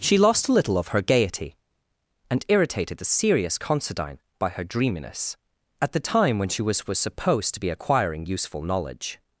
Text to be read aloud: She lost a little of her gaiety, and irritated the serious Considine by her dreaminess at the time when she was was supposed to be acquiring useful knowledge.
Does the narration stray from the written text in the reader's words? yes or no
no